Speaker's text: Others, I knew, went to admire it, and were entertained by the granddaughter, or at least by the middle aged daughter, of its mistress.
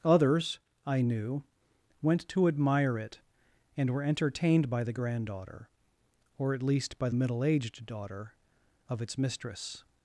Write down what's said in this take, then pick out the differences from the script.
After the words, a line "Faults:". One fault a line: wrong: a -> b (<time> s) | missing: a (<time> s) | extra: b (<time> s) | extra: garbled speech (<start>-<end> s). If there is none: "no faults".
Others, I knew, went to admire it, and were entertained by the granddaughter, or at least by middle aged daughter, of its mistress.
Faults:
missing: the (7.1 s)